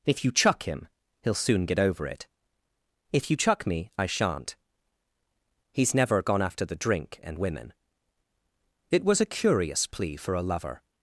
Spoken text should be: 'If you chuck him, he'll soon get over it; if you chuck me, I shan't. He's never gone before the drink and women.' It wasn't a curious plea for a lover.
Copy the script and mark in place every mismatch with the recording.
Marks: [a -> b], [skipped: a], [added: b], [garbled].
'If you chuck him, he'll soon get over it; if you chuck me, I shan't. He's never gone [before -> after] the drink and women.' It [wasn't -> was] a curious plea for a lover.